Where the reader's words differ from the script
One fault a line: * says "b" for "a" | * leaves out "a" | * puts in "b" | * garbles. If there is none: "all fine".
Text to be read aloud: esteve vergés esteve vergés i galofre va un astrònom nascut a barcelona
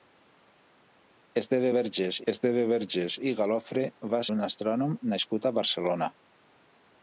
all fine